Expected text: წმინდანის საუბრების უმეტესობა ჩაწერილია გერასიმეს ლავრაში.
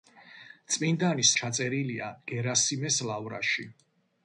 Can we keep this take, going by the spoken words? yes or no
no